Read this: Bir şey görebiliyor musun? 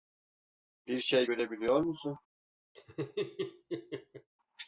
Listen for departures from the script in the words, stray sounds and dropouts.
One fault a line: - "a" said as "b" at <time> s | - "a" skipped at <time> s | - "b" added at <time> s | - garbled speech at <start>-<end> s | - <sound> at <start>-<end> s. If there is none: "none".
- laugh at 2.7-4.3 s